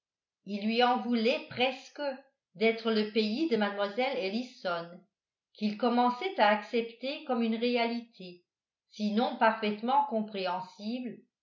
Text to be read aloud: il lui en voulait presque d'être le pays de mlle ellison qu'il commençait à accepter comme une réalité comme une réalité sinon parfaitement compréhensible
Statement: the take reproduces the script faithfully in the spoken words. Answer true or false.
false